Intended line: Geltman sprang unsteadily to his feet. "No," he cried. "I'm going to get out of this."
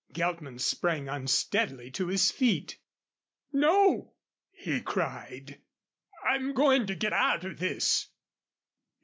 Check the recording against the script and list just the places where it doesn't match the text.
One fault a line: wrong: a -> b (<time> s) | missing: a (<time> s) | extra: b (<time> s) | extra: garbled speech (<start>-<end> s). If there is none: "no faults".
no faults